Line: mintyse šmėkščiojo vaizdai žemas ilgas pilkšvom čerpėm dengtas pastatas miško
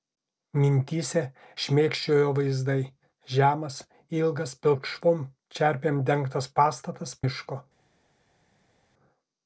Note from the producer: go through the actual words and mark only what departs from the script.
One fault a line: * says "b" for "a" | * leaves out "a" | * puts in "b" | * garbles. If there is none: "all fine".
all fine